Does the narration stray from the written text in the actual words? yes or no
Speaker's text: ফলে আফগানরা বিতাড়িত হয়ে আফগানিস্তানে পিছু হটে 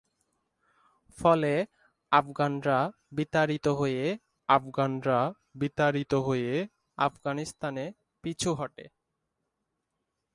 yes